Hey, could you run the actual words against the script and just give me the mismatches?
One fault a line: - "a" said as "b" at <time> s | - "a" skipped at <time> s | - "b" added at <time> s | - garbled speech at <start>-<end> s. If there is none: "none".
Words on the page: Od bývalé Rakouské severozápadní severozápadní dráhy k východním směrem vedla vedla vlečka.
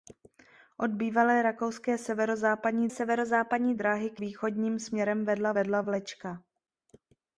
none